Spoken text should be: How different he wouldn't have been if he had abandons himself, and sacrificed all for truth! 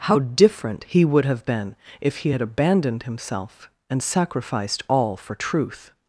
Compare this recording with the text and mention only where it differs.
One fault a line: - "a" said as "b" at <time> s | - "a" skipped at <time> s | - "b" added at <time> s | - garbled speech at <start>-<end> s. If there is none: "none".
- "wouldn't" said as "would" at 1.1 s
- "abandons" said as "abandoned" at 2.4 s